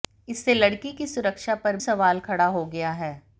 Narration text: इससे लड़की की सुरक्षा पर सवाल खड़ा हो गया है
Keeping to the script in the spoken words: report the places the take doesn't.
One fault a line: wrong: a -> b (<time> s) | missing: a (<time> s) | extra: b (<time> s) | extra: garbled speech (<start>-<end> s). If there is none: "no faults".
no faults